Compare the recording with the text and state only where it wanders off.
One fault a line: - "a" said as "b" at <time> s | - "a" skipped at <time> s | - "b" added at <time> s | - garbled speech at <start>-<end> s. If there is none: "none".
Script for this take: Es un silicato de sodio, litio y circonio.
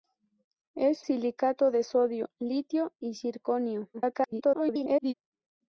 - "un" skipped at 1.1 s
- garbled speech at 3.9-5.1 s